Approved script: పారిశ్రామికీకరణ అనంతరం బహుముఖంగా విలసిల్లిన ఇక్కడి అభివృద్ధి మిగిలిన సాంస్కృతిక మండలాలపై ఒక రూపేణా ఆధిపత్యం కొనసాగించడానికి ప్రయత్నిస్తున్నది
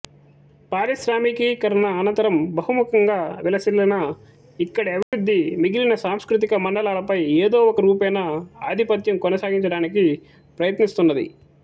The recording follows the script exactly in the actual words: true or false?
false